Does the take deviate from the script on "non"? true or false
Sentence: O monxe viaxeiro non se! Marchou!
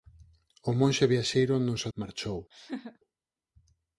false